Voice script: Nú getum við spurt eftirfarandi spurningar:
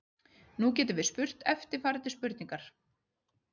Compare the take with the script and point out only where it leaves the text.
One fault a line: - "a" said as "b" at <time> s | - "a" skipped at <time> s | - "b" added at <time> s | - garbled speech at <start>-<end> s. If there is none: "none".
none